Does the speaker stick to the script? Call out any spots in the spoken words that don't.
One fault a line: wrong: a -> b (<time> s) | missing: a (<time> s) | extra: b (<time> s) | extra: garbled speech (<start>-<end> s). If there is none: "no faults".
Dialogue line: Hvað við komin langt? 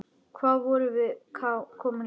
extra: vorum (0.7 s)